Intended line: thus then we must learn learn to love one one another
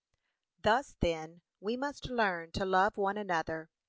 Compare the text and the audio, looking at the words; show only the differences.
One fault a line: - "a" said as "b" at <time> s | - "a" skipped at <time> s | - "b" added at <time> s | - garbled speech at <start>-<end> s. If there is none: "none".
- "learn" skipped at 2.5 s
- "one" skipped at 3.2 s